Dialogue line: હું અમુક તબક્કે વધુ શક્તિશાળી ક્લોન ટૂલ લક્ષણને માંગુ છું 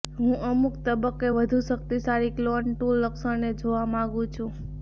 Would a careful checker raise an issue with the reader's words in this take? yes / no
yes